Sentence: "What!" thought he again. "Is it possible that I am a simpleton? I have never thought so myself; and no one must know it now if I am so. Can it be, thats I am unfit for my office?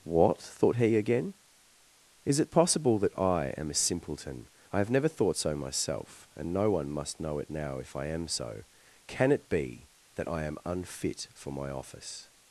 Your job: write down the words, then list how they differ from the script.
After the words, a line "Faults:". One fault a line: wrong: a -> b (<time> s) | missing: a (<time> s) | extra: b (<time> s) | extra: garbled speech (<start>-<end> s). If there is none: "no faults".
"What!" thought he again. "Is it possible that I am a simpleton? I have never thought so myself; and no one must know it now if I am so. Can it be, that I am unfit for my office?
Faults:
wrong: thats -> that (10.2 s)